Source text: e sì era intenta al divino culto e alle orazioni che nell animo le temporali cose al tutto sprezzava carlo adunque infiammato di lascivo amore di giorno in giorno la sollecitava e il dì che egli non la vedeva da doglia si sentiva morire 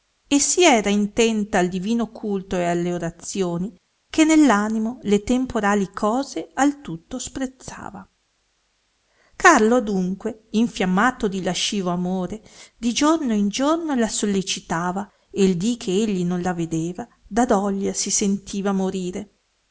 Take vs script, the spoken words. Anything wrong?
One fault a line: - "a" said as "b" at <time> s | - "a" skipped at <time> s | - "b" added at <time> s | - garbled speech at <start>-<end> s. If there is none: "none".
none